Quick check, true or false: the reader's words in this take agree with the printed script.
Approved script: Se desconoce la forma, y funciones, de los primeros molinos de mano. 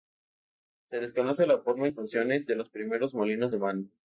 true